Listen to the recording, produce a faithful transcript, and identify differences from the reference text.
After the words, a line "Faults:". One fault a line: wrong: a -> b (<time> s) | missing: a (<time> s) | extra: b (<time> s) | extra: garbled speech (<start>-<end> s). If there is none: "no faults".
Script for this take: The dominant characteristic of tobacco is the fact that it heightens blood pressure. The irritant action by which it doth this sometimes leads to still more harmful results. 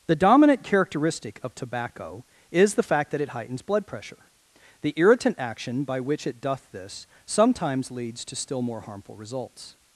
The dominant characteristic of tobacco is the fact that it heightens blood pressure. The irritant action by which it doth this sometimes leads to still more harmful results.
Faults:
no faults